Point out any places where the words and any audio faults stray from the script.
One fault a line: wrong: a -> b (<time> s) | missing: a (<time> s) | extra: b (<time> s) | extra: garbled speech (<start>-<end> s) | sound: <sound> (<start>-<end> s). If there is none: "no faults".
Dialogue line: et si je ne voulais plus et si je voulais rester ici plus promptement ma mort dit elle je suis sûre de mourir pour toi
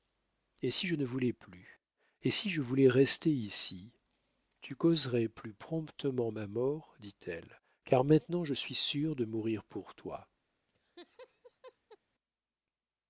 extra: tu causerais (4.6 s)
extra: car maintenant (7.8 s)
sound: laugh (10.7-12.0 s)